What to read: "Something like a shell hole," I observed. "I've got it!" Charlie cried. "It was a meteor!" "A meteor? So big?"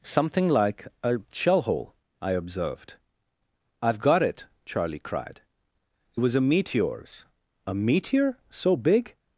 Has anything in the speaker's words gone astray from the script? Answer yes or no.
yes